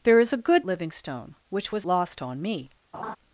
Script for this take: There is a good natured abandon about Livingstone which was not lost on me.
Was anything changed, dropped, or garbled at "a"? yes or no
no